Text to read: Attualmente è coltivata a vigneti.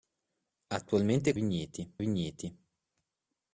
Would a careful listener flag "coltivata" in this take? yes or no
yes